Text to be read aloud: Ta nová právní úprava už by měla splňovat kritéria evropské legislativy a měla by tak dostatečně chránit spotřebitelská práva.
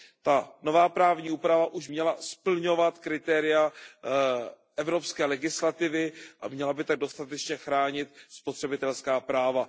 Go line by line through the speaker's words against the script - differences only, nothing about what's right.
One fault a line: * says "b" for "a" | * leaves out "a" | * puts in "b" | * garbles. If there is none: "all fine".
* leaves out "by"